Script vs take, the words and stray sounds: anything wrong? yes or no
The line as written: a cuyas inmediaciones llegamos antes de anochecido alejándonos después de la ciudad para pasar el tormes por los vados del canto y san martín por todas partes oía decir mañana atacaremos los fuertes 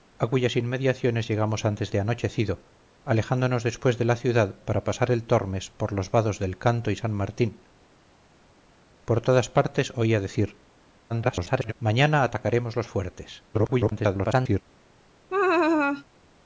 yes